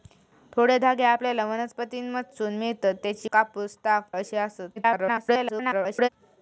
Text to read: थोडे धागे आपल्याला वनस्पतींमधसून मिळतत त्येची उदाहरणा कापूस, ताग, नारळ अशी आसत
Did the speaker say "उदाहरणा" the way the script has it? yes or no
no